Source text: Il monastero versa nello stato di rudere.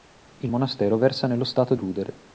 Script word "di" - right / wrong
wrong